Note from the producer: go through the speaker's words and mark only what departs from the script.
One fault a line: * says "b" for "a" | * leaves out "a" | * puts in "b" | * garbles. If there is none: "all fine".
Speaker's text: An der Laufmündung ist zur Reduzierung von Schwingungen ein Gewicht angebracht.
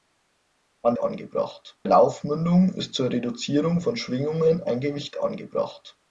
* says "angebracht" for "der"